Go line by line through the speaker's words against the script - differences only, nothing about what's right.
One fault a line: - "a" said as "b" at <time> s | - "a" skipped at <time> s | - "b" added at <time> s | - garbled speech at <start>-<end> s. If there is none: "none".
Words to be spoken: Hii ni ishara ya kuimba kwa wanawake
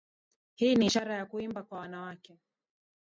none